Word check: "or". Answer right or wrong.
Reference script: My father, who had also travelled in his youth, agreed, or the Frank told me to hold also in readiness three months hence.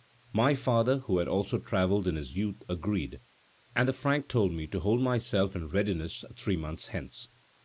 wrong